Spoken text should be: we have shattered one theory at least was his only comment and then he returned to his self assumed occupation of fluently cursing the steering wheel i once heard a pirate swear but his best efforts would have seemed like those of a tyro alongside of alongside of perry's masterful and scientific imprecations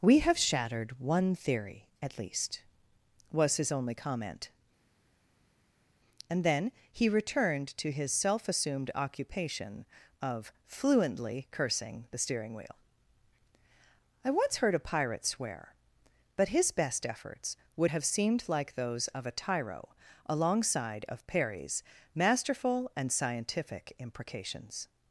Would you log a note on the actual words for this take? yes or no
yes